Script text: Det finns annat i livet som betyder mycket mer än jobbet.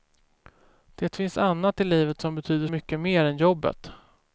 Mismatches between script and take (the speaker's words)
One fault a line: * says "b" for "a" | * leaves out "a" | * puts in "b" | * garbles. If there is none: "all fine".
all fine